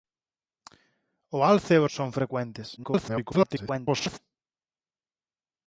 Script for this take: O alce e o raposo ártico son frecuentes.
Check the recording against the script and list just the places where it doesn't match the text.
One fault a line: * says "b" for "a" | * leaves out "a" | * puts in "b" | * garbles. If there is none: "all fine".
* leaves out "raposo ártico"
* garbles